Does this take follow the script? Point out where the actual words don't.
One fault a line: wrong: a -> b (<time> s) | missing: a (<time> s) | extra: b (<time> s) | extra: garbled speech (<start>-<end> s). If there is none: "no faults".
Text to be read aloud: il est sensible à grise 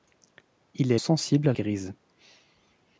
no faults